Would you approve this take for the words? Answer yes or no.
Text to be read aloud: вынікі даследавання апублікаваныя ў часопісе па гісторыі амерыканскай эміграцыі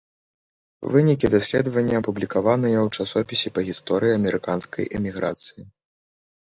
yes